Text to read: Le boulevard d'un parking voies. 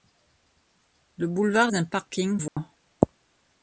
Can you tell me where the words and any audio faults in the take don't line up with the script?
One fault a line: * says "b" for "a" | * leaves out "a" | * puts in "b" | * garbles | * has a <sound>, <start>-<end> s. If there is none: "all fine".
* has a dropout, 2.5-2.6 s